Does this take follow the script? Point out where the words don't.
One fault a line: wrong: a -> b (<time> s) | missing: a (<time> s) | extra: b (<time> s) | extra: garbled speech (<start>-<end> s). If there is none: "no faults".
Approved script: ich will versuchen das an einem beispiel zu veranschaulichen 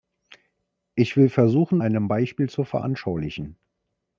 missing: das an (1.8 s)